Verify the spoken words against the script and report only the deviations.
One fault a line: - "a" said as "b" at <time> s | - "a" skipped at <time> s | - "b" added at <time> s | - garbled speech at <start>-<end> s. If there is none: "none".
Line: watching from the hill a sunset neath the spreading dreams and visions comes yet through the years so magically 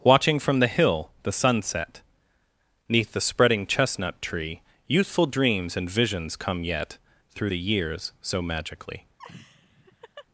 - "a" said as "the" at 1.2 s
- "chestnut tree youthful" added at 3.7 s
- "comes" said as "come" at 6.4 s